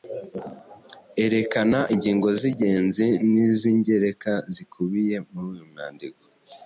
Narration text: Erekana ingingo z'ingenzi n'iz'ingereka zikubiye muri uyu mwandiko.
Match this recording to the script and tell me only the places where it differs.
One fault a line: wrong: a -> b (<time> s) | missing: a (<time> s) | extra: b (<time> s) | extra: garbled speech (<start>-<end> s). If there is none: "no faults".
no faults